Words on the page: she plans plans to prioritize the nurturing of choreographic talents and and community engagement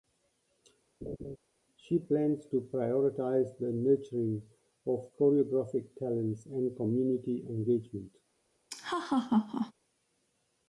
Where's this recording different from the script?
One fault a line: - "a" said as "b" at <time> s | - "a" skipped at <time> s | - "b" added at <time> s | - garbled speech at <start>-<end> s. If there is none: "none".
- "plans" skipped at 2.4 s
- "and" skipped at 6.8 s